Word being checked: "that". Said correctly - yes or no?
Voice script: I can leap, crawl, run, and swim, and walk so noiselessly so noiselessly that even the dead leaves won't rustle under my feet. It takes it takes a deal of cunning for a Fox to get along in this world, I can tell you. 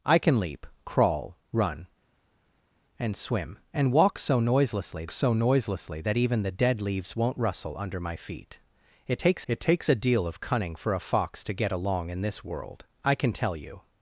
yes